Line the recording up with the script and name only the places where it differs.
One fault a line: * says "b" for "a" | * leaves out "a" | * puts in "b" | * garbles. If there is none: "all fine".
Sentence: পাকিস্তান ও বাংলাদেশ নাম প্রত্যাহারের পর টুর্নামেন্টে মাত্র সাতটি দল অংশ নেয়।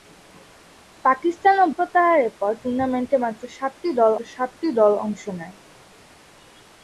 * leaves out "বাংলাদেশ নাম"
* puts in "সাতটি দল"